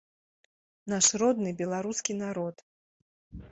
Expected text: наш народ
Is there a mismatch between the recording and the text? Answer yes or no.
yes